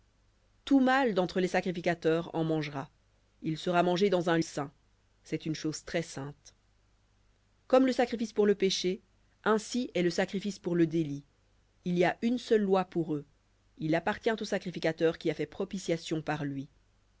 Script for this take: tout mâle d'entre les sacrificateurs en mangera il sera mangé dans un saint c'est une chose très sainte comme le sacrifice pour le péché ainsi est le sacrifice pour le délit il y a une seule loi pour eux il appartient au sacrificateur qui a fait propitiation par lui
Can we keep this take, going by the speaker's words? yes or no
yes